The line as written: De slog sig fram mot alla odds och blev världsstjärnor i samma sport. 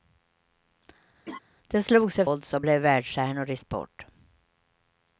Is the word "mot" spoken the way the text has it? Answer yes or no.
no